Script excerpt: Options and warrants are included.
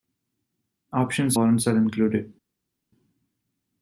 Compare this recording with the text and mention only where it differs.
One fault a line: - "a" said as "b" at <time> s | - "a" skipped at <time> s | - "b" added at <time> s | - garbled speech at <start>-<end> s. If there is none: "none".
- "and" skipped at 1.4 s